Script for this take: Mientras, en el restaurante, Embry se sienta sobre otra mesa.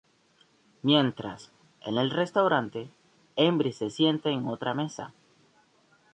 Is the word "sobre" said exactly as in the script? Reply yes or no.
no